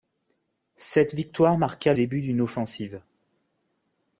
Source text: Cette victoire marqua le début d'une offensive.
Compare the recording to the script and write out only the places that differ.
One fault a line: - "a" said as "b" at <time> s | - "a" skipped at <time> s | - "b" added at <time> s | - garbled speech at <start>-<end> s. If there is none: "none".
- "le" skipped at 1.9 s